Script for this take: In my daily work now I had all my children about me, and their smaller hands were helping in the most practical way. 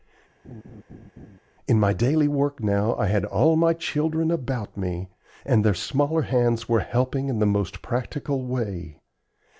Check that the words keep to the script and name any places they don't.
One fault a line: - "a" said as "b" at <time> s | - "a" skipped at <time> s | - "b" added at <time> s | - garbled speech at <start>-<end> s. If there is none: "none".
none